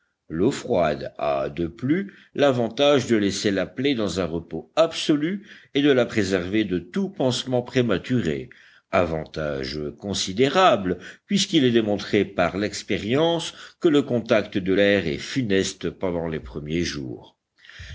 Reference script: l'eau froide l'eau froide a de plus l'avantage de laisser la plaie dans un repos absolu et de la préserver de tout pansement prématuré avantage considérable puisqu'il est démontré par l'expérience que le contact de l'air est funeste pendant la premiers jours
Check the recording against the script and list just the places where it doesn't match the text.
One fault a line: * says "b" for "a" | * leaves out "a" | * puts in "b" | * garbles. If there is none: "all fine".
* leaves out "l'eau froide"
* says "les" for "la"